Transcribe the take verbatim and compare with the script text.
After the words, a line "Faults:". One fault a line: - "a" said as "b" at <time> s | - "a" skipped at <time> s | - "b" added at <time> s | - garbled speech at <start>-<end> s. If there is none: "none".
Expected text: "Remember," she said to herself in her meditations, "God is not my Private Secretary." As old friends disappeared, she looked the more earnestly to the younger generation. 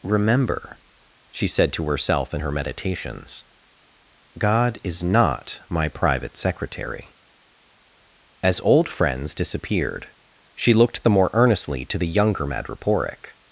"Remember," she said to herself in her meditations, "God is not my Private Secretary." As old friends disappeared, she looked the more earnestly to the younger madreporic.
Faults:
- "generation" said as "madreporic" at 12.5 s